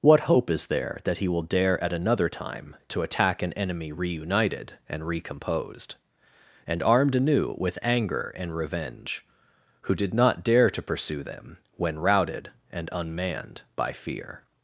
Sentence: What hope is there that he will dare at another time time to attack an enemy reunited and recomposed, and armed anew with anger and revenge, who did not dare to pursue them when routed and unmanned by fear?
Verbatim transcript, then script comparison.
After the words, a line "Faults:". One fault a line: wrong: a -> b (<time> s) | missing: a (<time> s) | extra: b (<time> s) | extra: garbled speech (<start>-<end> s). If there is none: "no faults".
What hope is there that he will dare at another time to attack an enemy reunited and recomposed, and armed anew with anger and revenge, who did not dare to pursue them when routed and unmanned by fear?
Faults:
missing: time (2.8 s)